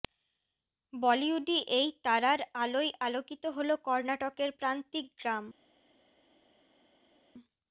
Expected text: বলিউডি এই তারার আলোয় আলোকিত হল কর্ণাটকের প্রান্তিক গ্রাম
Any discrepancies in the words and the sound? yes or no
no